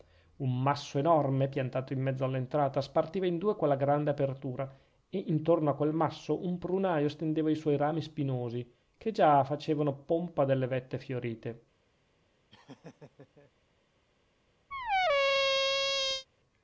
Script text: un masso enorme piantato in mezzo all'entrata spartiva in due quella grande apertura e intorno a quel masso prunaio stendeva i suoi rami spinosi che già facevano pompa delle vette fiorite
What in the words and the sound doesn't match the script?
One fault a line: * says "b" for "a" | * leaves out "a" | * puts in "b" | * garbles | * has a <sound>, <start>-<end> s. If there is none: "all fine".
* puts in "un"
* has a laugh, 12.5-13.5 s
* has a squeak, 14.7-16.3 s